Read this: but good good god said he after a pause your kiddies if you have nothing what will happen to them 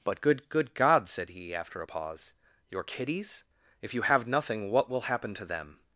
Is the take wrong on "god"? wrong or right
right